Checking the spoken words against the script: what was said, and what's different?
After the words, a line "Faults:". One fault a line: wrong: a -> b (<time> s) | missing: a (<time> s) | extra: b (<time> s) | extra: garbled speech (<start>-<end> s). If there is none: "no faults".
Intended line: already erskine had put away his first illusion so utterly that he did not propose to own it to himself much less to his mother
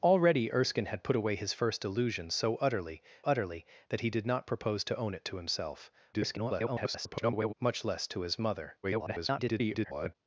already erskine had put away his first illusion so utterly utterly that he did not propose to own it to himself [garbled] much less to his mother [garbled]
Faults:
extra: utterly (3.2 s)
extra: garbled speech (6.1-7.5 s)
extra: garbled speech (8.8-10.2 s)